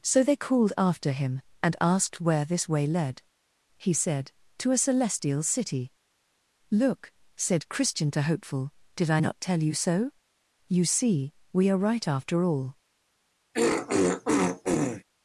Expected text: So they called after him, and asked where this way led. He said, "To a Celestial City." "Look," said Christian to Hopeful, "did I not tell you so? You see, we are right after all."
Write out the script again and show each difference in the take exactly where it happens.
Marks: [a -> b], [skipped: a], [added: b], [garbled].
So they called after him, and asked where this way led. He said, "To a Celestial City." "Look," said Christian to Hopeful, "did I not tell you so? You see, we are right after all."